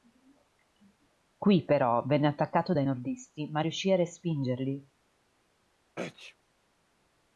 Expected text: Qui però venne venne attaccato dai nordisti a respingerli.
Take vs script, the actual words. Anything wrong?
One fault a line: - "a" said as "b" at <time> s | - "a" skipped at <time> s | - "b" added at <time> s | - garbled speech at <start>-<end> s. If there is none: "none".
- "venne" skipped at 2.2 s
- "ma riuscì" added at 3.5 s